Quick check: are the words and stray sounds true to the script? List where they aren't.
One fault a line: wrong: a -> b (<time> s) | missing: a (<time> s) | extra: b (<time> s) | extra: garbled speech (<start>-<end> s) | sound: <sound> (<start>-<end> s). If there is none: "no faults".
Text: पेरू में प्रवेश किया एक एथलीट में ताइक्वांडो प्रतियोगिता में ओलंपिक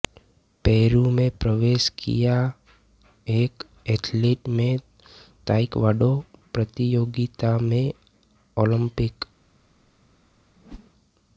sound: whoosh (10.6-10.9 s)